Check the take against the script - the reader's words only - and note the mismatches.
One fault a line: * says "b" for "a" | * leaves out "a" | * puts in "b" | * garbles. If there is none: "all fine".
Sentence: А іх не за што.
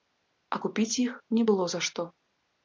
* puts in "купіць"
* puts in "было"